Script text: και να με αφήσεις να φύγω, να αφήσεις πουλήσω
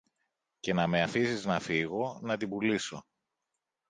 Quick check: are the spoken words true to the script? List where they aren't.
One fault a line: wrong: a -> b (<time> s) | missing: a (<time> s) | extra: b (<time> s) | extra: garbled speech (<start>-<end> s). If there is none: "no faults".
wrong: αφήσεις -> την (2.4 s)